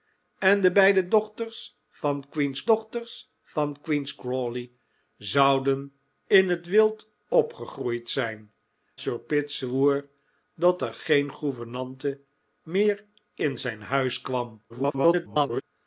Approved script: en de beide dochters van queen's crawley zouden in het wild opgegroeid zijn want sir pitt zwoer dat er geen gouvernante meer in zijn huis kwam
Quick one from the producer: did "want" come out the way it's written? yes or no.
no